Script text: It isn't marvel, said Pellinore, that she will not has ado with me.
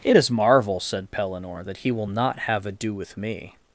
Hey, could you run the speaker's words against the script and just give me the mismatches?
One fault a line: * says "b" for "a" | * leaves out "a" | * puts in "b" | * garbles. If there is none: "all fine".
* says "is" for "isn't"
* says "he" for "she"
* says "have" for "has"